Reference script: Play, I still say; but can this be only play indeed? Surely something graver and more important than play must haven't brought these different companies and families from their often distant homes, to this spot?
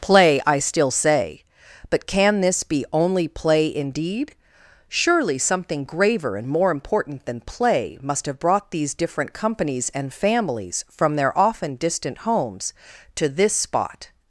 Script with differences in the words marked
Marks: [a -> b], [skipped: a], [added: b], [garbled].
Play, I still say; but can this be only play indeed? Surely something graver and more important than play must [haven't -> have] brought these different companies and families from their often distant homes, to this spot?